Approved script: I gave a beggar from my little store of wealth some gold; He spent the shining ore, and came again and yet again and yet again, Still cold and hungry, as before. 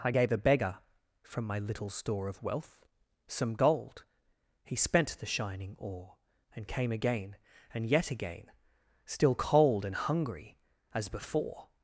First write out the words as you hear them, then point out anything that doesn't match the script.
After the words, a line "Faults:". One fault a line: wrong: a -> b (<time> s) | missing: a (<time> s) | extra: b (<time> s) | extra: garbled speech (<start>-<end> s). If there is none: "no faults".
I gave a beggar from my little store of wealth some gold; He spent the shining ore, and came again and yet again, Still cold and hungry, as before.
Faults:
missing: and yet again (8.5 s)